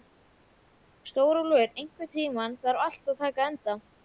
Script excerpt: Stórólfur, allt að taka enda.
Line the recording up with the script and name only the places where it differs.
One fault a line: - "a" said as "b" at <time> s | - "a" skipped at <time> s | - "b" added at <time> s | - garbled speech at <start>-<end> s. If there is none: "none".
- "einhvern tímann þarf" added at 1.8 s